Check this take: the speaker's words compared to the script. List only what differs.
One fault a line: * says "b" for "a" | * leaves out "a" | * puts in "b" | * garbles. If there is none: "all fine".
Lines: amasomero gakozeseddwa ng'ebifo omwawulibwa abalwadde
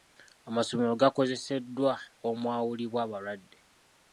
* leaves out "ng'ebifo"